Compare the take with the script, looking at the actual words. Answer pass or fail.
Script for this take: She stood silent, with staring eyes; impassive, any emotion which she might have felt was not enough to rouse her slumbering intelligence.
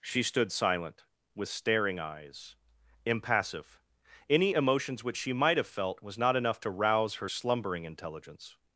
fail